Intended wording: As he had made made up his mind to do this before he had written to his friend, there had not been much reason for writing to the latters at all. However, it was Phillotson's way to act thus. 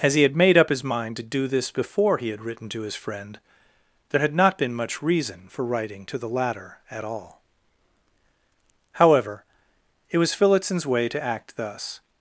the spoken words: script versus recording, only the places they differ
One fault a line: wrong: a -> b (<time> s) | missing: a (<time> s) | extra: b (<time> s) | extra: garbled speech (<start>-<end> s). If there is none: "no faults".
missing: made (0.6 s)
wrong: latters -> latter (6.3 s)